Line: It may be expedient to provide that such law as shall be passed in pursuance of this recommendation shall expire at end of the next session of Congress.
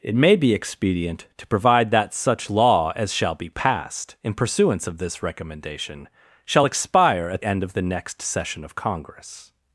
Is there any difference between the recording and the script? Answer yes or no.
no